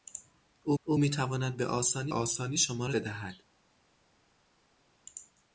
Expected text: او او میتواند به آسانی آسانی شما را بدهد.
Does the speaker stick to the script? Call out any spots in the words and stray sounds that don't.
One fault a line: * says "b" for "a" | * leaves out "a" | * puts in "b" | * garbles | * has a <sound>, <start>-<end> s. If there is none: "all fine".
all fine